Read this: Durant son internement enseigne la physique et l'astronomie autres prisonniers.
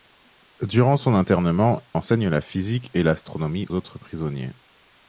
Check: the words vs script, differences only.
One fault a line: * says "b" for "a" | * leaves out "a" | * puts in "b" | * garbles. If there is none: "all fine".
all fine